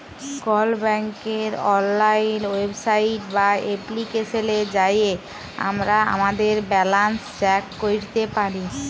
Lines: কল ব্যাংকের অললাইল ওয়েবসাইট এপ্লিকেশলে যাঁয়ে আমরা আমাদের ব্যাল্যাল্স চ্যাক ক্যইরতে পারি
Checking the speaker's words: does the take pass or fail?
fail